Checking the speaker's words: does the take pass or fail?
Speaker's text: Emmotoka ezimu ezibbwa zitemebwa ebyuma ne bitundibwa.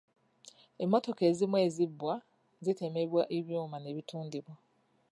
pass